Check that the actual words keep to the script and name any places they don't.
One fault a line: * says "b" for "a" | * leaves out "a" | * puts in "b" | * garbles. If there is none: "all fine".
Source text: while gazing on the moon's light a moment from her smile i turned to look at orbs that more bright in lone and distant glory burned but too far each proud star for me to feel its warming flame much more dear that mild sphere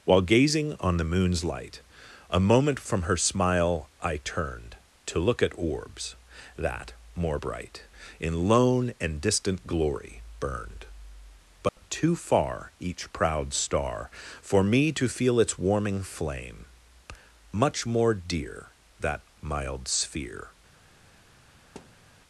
all fine